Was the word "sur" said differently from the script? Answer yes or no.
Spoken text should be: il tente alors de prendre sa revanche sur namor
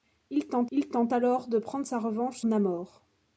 yes